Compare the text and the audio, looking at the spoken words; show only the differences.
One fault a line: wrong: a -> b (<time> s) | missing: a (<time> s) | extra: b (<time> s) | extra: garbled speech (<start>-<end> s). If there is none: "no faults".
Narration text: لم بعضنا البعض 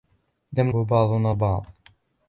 no faults